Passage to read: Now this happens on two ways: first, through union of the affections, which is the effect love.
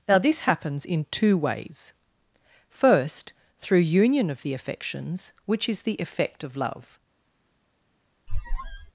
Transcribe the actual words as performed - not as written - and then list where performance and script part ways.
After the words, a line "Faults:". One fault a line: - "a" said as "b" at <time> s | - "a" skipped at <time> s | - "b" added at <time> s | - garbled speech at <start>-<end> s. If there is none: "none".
Now this happens in two ways: first, through union of the affections, which is the effect of love.
Faults:
- "on" said as "in" at 0.8 s
- "of" added at 6.4 s